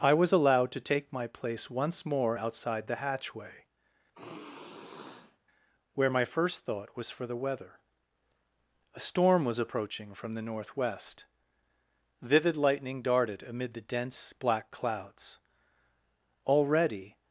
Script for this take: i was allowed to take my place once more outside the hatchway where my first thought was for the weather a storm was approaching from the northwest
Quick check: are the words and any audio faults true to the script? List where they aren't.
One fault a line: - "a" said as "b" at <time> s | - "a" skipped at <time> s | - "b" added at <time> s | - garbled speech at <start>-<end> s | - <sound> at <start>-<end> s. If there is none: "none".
- sigh at 4.1-5.4 s
- "vivid lightning darted amid the dense black clouds already" added at 12.2 s